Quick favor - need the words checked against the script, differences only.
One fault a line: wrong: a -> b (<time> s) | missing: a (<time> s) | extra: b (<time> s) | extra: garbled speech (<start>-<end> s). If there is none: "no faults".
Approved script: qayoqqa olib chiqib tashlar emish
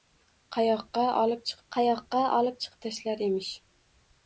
extra: qayoqqa olib chiqib (1.7 s)